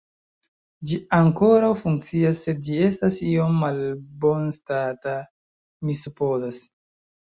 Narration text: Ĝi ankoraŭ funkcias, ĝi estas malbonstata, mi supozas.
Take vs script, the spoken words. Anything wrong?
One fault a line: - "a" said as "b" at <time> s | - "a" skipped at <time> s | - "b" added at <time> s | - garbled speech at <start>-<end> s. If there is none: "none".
- "sed" added at 2.5 s
- "iom" added at 3.3 s